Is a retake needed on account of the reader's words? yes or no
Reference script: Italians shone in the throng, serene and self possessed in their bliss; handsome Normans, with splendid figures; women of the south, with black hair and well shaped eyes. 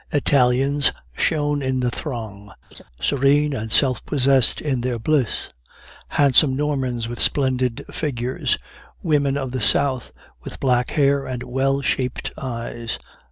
no